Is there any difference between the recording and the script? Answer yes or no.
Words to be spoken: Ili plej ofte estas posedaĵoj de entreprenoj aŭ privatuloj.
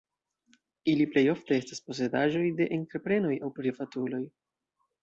no